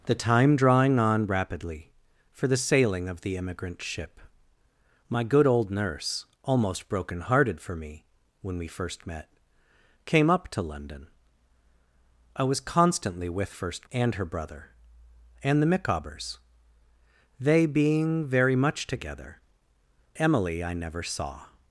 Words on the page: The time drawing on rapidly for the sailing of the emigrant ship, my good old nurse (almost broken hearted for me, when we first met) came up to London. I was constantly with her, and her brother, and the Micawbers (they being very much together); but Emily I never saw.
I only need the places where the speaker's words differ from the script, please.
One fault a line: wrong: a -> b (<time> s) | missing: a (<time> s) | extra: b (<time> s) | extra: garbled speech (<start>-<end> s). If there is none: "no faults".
wrong: her -> first (13.5 s)
missing: but (19.4 s)